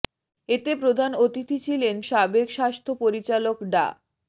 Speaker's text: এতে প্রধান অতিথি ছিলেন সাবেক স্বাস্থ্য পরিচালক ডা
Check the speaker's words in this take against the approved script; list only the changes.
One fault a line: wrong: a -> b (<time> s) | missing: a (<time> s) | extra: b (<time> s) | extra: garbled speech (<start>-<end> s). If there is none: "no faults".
no faults